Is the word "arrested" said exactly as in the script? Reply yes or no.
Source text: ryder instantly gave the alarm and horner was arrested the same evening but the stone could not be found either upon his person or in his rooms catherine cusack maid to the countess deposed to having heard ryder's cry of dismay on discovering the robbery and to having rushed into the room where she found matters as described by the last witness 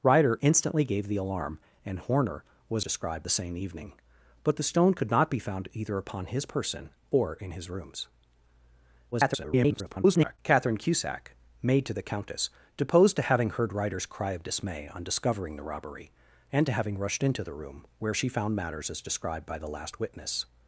no